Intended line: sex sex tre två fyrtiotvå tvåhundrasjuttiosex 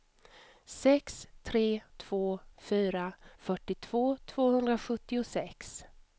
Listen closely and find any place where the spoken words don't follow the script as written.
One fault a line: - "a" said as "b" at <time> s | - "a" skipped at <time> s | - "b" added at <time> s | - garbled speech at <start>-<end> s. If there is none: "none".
- "sex" skipped at 1.3 s
- "fyra" added at 2.6 s